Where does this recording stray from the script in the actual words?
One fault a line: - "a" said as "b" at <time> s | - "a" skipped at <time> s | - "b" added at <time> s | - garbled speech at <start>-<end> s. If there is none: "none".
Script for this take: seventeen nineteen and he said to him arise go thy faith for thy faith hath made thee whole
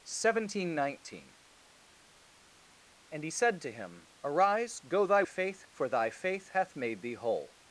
none